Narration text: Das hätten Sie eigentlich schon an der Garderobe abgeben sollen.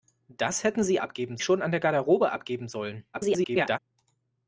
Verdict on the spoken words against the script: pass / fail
fail